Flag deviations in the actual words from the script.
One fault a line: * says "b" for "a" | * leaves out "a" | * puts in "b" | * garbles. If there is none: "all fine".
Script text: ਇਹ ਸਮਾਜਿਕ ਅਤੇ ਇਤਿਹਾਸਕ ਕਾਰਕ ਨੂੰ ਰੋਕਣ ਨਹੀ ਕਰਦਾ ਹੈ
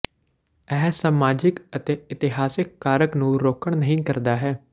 all fine